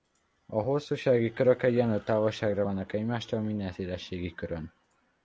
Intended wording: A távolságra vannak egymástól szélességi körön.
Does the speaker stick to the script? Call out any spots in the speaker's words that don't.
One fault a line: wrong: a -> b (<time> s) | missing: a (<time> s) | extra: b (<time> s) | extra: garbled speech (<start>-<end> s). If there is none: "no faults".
extra: hosszúsági körök egyenlő (0.6 s)
extra: minden (3.4 s)